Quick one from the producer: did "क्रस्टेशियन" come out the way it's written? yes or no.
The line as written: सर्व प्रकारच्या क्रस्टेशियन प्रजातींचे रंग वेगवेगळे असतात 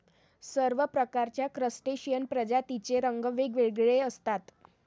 yes